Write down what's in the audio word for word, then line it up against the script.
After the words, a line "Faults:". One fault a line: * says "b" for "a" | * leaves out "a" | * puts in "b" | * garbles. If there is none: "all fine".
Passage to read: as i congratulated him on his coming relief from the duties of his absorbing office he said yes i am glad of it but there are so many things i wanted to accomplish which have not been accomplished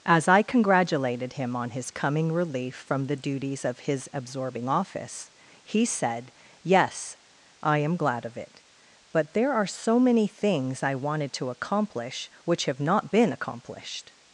as i congratulated him on his coming relief from the duties of his absorbing office he said yes i am glad of it but there are so many things i wanted to accomplish which have not been accomplished
Faults:
all fine